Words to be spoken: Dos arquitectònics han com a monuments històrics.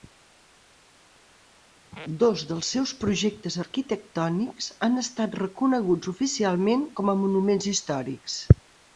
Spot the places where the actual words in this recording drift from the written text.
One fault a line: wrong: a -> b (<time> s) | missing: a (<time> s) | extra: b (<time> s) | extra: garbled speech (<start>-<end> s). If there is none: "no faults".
extra: dels seus projectes (2.5 s)
extra: estat reconeguts oficialment (5.0 s)